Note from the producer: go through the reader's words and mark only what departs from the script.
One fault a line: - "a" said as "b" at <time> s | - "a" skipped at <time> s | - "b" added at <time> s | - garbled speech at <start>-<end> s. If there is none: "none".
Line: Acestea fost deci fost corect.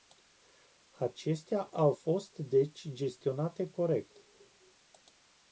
- "au" added at 1.6 s
- "fost" said as "gestionate" at 2.9 s